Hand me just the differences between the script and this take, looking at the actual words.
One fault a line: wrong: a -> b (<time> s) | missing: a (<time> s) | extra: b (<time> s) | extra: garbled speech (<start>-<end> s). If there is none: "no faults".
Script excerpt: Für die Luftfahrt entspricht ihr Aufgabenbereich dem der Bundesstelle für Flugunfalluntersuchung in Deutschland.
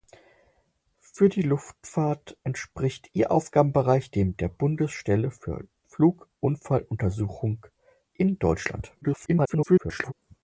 extra: garbled speech (9.0-10.1 s)